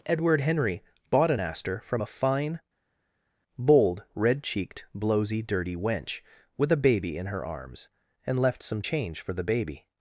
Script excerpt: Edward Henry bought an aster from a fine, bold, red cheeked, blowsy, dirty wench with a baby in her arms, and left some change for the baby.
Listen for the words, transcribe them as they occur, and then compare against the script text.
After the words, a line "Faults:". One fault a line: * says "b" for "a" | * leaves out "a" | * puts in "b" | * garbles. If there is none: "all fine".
Edward Henry bought an aster from a fine, bold, red cheeked, blowsy, dirty wench with a baby in her arms, and left some change for the baby.
Faults:
all fine